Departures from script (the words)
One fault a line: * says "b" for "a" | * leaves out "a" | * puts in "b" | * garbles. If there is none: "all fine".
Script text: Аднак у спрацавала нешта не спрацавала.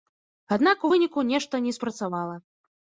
* says "выніку" for "спрацавала"